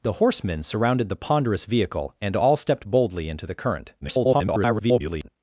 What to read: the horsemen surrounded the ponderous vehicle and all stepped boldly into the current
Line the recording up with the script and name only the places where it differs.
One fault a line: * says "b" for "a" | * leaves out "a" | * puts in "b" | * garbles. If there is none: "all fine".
* garbles